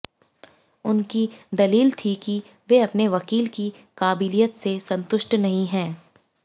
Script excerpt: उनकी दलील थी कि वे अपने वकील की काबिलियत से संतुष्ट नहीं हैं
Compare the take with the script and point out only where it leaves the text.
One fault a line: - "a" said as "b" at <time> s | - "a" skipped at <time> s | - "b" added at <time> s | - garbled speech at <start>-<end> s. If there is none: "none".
none